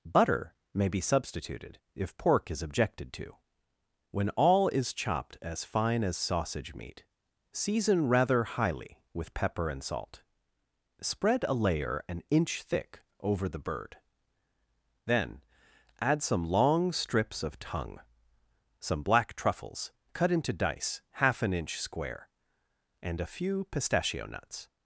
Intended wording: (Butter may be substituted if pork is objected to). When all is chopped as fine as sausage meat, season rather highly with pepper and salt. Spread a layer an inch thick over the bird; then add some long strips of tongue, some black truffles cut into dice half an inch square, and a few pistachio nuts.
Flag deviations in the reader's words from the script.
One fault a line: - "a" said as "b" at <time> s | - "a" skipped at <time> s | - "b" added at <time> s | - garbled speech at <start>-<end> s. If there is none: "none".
none